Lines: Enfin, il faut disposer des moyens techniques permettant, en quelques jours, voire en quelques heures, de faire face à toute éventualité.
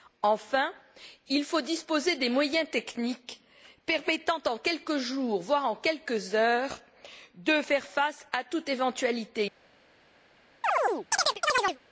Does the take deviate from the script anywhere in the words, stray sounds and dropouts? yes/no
yes